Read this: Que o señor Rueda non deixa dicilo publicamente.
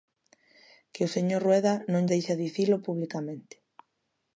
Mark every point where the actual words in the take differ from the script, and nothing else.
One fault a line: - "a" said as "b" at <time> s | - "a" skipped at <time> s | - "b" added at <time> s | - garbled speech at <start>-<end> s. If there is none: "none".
none